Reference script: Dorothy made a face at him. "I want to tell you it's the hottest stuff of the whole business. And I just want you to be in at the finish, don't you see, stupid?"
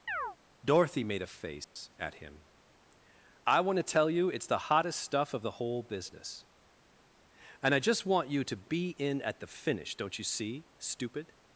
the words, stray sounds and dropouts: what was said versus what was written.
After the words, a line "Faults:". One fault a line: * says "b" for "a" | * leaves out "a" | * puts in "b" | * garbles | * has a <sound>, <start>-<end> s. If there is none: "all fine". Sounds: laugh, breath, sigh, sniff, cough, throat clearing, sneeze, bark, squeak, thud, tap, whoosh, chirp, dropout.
Dorothy made a face at him. "I want to tell you it's the hottest stuff of the whole business. And I just want you to be in at the finish, don't you see, stupid?"
Faults:
* has a chirp, 0.1-0.4 s
* has a dropout, 1.6-1.8 s